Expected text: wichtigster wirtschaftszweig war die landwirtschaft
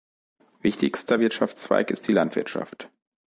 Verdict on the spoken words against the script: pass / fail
fail